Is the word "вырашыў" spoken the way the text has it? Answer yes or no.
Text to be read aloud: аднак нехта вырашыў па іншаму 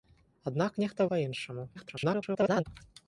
no